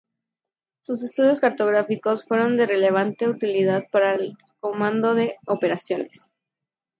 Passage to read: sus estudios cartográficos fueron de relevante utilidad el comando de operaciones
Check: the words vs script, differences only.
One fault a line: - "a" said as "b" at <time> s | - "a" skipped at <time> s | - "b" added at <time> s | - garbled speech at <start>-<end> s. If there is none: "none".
- "para" added at 3.9 s